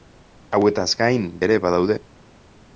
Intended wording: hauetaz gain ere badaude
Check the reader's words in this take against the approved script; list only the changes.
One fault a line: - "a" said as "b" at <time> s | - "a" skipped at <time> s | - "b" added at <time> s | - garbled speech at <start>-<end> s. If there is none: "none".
none